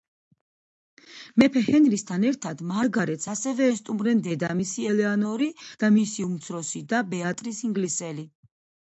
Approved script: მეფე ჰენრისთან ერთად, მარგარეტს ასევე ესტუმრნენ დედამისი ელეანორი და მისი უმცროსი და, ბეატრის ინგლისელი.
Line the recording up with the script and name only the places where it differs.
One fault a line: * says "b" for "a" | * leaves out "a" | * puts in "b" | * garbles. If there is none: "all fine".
all fine